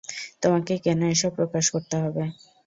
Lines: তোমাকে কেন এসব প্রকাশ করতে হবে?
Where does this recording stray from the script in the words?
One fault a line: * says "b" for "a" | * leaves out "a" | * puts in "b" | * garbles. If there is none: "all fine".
all fine